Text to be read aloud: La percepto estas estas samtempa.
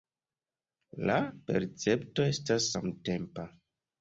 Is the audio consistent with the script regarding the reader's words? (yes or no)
no